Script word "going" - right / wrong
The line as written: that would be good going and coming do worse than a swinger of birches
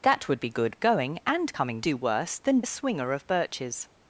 right